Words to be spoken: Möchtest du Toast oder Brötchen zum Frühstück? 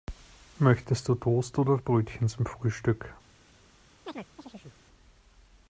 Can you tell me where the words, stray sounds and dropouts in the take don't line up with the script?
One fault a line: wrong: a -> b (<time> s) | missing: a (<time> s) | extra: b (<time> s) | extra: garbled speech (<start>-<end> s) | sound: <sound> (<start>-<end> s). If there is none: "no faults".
sound: chirp (4.1-4.8 s)